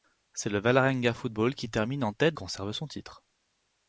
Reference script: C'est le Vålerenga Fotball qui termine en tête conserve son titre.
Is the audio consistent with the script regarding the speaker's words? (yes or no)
yes